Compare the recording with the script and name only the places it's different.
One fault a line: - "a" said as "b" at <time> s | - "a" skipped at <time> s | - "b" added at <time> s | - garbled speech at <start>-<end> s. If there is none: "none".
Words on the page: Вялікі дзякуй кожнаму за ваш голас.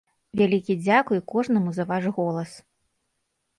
none